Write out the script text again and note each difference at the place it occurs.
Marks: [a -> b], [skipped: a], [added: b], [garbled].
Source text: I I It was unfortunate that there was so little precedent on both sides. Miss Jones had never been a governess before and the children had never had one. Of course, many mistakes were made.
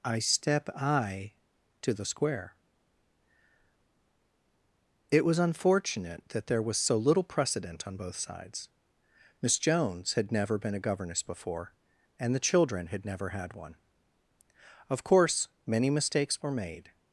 I [added: step] I [added: to the square] It was unfortunate that there was so little precedent on both sides. Miss Jones had never been a governess before and the children had never had one. Of course, many mistakes were made.